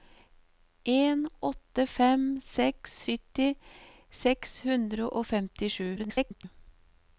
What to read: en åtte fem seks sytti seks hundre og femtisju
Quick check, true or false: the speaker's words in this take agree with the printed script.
false